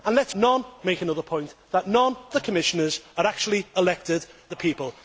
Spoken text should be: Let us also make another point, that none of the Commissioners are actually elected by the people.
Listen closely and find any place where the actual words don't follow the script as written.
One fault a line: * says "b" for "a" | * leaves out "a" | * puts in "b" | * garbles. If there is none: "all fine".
* says "none" for "also"
* leaves out "of"
* leaves out "by"